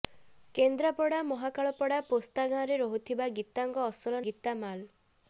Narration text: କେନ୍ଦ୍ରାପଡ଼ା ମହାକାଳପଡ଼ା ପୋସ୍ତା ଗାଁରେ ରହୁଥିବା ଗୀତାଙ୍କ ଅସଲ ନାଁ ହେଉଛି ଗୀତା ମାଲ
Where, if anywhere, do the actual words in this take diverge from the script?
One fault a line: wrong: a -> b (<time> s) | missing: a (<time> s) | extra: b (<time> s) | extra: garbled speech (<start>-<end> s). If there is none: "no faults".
missing: ନାଁ ହେଉଛି (4.2 s)